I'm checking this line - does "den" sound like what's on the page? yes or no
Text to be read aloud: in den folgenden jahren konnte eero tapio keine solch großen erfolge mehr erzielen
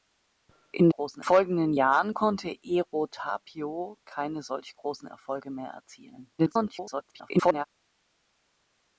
no